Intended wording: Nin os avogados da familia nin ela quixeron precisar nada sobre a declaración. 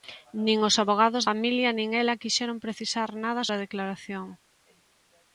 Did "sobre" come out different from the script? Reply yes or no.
yes